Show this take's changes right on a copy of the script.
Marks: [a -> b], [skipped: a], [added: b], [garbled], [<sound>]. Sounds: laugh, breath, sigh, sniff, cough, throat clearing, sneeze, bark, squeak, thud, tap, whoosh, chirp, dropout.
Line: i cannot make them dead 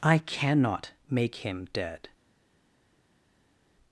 i cannot make [them -> him] dead